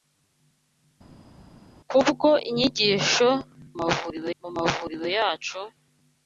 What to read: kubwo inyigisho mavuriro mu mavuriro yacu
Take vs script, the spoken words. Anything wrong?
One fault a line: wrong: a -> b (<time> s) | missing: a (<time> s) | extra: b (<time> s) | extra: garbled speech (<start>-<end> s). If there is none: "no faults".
no faults